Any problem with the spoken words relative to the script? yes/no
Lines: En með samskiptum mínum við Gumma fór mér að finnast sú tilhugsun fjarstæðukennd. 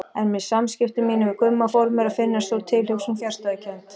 no